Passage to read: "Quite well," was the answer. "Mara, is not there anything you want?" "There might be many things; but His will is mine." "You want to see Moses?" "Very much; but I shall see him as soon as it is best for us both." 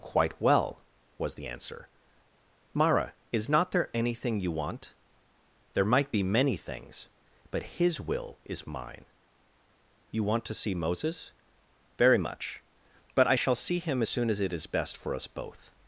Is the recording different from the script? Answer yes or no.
no